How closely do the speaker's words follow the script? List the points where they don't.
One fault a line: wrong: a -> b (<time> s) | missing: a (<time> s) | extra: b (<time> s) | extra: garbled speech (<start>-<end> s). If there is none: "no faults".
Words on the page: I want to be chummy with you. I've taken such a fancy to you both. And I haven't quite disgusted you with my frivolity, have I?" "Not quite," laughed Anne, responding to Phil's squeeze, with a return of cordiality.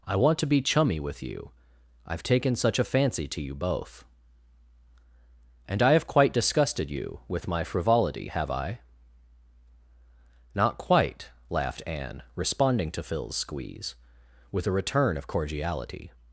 wrong: haven't -> have (5.9 s)